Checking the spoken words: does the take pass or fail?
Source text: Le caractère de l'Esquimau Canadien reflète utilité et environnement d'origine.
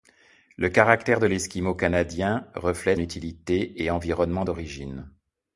pass